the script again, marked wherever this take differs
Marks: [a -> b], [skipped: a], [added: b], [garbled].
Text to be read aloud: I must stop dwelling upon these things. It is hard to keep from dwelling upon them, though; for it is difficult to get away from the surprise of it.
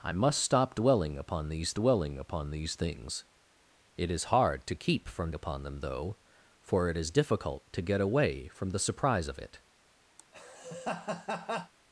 I must stop dwelling upon these [added: dwelling upon these] things. It is hard to keep from [skipped: dwelling] upon them, though; for it is difficult to get away from the surprise of it.